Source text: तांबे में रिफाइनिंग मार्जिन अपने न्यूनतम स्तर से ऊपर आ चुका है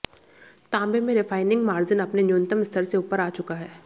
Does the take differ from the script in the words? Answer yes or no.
no